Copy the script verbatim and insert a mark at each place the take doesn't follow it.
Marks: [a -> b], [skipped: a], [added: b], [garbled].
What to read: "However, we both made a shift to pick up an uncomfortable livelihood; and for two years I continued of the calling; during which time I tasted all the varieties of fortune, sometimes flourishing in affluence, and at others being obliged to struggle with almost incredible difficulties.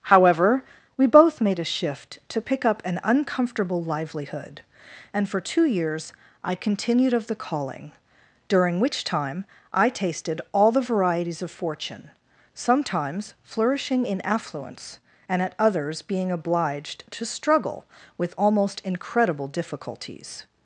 "However, we both made a shift to pick up an uncomfortable livelihood; and for two years I continued of the calling; during which time I tasted all the varieties of fortune, sometimes flourishing in affluence, and at others being obliged to struggle with almost incredible difficulties.